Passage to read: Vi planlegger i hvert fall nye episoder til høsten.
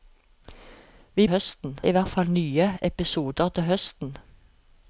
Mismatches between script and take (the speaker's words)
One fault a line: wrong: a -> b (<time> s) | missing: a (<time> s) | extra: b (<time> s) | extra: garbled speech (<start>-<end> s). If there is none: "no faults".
wrong: planlegger -> høsten (1.3 s)